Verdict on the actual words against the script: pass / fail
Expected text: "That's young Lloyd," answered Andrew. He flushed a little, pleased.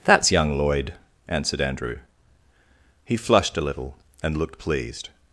fail